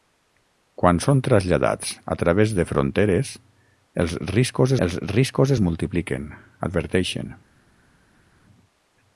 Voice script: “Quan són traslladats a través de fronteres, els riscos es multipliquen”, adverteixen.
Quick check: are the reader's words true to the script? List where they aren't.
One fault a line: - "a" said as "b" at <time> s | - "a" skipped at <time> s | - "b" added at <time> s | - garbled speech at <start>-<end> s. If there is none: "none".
- "els riscos" added at 4.9 s